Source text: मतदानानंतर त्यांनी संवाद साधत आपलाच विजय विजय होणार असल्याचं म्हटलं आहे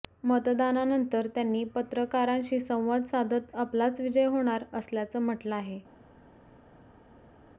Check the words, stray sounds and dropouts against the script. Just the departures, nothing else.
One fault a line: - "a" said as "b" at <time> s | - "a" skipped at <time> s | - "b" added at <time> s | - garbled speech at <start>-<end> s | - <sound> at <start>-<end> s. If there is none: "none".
- "पत्रकारांशी" added at 1.8 s
- "विजय" skipped at 4.3 s